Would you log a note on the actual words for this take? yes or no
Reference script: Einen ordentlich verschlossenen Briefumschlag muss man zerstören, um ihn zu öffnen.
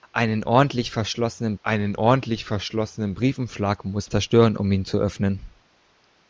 yes